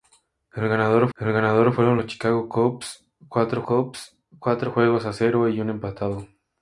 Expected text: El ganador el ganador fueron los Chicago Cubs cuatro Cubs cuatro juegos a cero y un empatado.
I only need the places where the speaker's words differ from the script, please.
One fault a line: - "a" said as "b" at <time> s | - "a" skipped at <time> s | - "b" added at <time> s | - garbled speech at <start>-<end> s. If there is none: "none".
none